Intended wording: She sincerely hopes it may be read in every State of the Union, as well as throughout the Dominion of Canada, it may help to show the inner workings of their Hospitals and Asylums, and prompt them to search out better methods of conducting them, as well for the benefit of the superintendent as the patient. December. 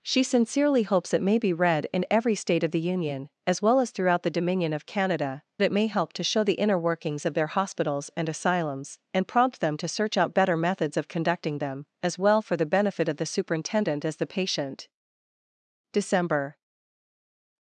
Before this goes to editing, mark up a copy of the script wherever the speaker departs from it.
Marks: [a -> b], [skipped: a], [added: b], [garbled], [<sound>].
She sincerely hopes it may be read in every State of the Union, as well as throughout the Dominion of Canada, it may help to show the inner workings of their Hospitals and Asylums, and prompt them to search out better methods of conducting them, as well for the benefit of the superintendent as the patient. December.